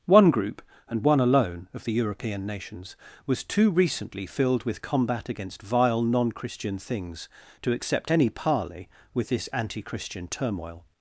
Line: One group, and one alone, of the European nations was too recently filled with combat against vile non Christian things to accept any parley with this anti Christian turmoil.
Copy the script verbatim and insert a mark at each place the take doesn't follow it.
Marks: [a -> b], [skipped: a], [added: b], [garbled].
One group, and one alone, of the European nations was too recently filled with combat against vile non Christian things to accept any parley with this anti Christian turmoil.